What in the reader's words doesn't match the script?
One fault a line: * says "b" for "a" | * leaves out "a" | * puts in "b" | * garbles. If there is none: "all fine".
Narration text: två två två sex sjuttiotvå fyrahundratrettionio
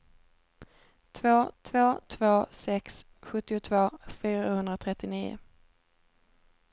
all fine